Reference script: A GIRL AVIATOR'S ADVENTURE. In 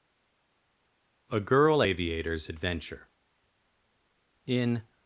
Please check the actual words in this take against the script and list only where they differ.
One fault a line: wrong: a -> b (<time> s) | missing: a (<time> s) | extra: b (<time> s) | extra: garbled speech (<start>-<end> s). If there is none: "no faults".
no faults